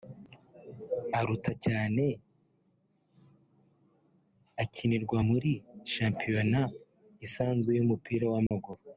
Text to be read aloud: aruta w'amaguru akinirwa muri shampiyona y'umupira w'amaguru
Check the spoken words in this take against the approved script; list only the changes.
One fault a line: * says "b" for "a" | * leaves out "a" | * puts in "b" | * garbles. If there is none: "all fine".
* says "cyane" for "w'amaguru"
* puts in "isanzwe"